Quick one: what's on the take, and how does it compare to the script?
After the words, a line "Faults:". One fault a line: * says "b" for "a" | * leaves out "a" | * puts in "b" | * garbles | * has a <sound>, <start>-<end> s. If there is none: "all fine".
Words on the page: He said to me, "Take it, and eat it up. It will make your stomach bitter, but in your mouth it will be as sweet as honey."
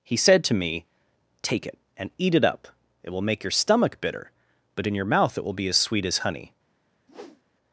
He said to me, "Take it, and eat it up. It will make your stomach bitter, but in your mouth it will be as sweet as honey."
Faults:
* has a whoosh, 7.1-7.4 s